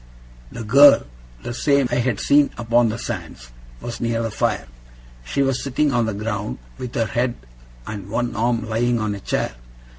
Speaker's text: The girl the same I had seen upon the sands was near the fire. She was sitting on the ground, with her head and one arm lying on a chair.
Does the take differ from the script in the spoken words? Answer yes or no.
no